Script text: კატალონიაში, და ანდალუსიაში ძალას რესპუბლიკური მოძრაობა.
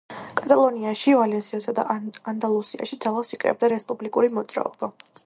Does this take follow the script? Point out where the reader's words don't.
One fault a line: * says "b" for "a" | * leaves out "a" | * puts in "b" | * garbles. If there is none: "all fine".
* puts in "ვალენსიასა"
* puts in "იკრებდა"